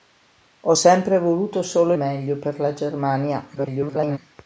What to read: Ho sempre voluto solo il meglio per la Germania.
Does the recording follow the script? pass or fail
fail